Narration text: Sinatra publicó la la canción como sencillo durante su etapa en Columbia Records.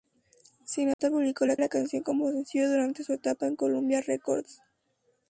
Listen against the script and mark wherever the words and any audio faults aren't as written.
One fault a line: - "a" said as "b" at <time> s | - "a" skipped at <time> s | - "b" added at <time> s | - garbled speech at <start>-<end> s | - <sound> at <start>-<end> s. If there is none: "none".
- dropout at 0.9-1.0 s